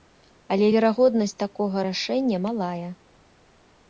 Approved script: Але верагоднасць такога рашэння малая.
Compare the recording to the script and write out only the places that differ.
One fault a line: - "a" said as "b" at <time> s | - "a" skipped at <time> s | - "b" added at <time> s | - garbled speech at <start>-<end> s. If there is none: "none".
none